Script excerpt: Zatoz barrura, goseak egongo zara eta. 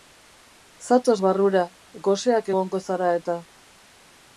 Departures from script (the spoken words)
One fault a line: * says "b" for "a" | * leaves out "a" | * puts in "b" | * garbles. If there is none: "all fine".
all fine